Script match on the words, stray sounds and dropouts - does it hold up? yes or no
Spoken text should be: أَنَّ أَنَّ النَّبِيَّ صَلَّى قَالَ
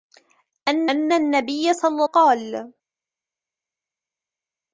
yes